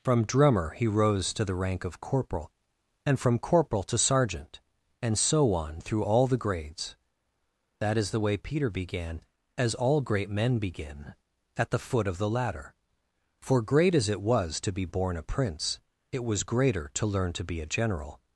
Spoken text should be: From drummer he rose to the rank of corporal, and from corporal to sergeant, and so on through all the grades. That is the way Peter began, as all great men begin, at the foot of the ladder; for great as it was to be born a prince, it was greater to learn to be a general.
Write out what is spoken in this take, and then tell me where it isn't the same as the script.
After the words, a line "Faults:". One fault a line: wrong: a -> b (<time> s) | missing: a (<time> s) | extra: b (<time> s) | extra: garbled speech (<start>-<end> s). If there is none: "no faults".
From drummer he rose to the rank of corporal, and from corporal to sergeant, and so on through all the grades. That is the way Peter began, as all great men begin, at the foot of the ladder; for great as it was to be born a prince, it was greater to learn to be a general.
Faults:
no faults